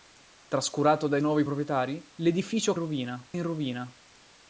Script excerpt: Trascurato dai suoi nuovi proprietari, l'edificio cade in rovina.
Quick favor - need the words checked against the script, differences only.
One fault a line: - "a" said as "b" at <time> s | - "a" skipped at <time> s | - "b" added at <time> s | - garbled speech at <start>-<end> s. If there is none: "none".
- "suoi" skipped at 1.2 s
- "cade" said as "rovina" at 2.7 s